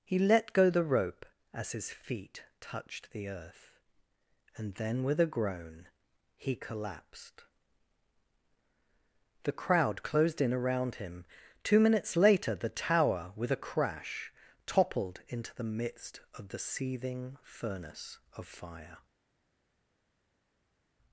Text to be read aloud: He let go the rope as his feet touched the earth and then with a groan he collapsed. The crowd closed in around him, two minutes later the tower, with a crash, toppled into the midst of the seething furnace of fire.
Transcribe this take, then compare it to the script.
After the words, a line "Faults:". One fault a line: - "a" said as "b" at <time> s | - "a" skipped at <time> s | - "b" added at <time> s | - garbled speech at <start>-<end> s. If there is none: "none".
He let go the rope as his feet touched the earth and then with a groan he collapsed. The crowd closed in around him, two minutes later the tower, with a crash, toppled into the midst of the seething furnace of fire.
Faults:
none